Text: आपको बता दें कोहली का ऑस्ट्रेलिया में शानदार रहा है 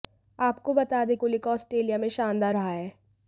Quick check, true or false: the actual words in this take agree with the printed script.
true